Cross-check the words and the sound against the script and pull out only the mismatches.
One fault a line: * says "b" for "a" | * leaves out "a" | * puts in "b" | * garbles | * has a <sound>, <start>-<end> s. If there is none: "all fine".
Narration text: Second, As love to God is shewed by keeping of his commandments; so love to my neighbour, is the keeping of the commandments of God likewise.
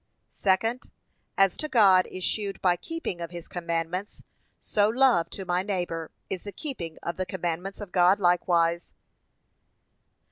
* leaves out "love"